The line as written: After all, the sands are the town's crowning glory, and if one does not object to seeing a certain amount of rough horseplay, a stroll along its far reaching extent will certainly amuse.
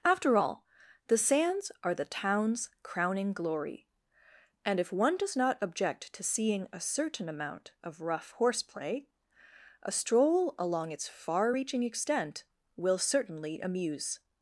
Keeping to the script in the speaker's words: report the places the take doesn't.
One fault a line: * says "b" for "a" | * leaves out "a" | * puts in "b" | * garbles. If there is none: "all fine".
all fine